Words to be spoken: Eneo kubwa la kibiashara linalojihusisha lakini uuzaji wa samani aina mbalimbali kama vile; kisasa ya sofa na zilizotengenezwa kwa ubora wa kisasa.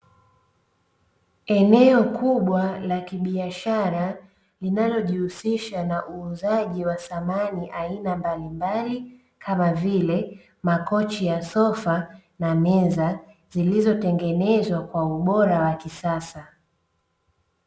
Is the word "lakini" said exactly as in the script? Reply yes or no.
no